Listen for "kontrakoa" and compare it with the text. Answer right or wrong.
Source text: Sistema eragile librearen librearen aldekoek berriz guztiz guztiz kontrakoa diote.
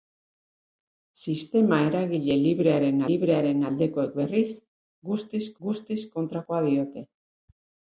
right